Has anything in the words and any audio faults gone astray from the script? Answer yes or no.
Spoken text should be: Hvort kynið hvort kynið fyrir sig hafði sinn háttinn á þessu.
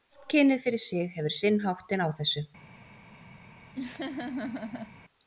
yes